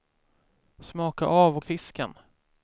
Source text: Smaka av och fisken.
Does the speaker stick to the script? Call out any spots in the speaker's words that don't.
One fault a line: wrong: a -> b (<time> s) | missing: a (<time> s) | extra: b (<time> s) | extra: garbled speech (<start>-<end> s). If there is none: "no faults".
no faults